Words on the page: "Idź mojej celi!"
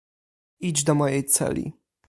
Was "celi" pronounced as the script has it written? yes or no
yes